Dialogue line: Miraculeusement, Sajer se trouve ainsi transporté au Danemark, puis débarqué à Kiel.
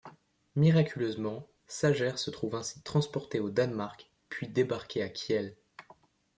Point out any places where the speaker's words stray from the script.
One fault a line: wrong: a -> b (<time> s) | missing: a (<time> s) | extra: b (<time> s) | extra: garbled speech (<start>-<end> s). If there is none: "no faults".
no faults